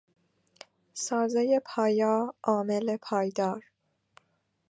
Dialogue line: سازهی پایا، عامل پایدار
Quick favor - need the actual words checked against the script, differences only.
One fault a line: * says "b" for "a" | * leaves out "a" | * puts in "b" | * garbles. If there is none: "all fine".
all fine